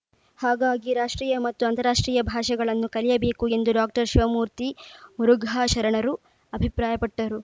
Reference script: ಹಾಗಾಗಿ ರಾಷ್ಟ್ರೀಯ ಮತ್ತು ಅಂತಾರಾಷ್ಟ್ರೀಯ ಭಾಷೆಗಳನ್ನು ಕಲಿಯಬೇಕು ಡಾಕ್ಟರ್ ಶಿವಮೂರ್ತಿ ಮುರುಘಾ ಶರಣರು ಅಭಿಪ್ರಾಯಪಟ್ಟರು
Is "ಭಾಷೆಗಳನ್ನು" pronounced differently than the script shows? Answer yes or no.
no